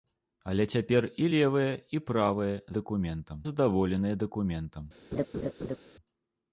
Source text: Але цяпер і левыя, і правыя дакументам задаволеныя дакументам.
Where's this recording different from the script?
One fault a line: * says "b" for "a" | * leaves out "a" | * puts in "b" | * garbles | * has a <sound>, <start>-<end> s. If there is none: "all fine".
* has a laugh, 5.1-5.8 s